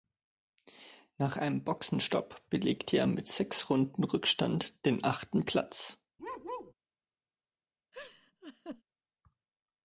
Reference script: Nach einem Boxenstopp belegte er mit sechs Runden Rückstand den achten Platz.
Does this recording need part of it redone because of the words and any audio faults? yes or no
yes